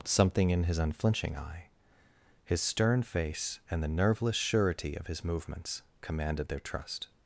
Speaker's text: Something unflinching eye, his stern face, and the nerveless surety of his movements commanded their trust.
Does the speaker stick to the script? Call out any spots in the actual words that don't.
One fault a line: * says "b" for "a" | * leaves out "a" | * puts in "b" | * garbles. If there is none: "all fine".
* puts in "in his"